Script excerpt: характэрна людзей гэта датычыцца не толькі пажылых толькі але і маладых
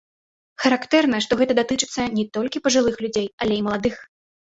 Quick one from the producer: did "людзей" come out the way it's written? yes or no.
no